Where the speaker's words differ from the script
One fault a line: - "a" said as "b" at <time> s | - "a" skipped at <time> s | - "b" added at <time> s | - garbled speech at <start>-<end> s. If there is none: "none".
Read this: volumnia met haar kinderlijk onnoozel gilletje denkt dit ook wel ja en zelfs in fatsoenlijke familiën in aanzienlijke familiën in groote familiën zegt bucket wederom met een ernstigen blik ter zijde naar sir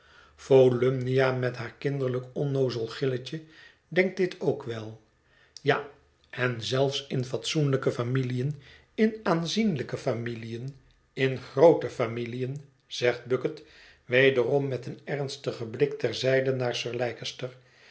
none